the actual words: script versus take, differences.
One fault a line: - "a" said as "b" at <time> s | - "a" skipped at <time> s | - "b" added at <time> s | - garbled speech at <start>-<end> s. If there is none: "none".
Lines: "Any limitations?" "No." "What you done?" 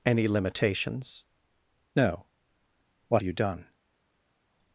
none